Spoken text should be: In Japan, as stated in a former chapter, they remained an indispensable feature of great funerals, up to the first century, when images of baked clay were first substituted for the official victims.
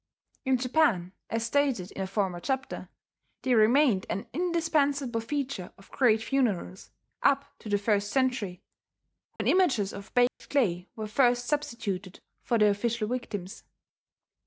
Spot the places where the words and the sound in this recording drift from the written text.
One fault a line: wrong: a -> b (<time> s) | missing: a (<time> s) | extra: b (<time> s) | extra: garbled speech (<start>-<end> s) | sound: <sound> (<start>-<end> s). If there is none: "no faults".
sound: dropout (9.4-9.4 s)
sound: dropout (10.3-10.4 s)